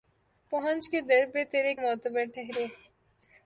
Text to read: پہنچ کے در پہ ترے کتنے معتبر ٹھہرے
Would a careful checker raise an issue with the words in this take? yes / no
yes